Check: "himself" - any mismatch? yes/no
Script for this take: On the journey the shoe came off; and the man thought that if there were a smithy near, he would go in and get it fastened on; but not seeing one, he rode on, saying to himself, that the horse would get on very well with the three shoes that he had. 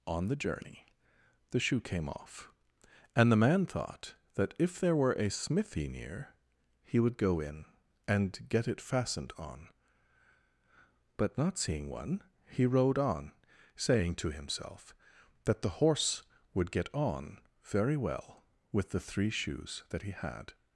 no